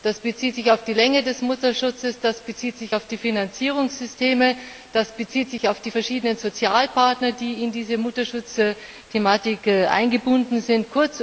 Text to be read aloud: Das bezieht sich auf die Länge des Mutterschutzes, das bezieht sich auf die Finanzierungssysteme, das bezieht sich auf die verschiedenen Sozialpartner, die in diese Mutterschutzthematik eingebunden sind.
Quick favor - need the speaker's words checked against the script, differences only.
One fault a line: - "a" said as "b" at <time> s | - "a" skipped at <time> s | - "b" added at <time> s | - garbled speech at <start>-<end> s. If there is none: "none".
none